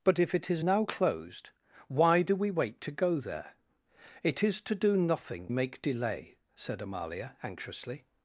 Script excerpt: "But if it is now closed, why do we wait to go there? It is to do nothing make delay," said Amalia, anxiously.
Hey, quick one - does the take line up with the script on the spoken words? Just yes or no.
yes